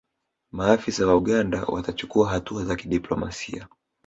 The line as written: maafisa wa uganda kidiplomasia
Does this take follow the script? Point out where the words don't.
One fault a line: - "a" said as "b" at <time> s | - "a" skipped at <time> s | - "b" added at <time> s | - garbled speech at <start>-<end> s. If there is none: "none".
- "watachukua hatua za" added at 1.6 s